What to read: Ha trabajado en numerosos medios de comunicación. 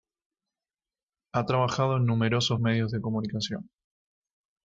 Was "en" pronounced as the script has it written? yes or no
yes